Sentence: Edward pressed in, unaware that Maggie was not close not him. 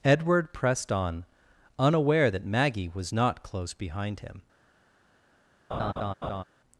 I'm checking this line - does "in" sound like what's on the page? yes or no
no